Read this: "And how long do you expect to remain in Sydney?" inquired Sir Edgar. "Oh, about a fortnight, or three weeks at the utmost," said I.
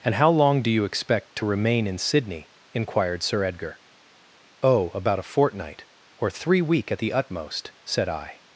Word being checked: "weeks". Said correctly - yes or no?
no